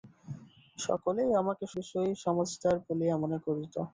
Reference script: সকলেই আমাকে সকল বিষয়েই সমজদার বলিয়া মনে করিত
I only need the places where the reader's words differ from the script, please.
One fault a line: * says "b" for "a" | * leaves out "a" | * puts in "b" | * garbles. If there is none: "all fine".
* leaves out "সকল"